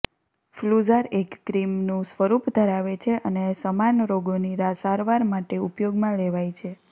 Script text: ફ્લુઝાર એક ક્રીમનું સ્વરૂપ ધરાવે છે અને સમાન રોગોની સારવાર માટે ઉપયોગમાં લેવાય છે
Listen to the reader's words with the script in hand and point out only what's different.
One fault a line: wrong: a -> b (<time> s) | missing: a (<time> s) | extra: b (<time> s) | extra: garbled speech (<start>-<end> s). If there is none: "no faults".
no faults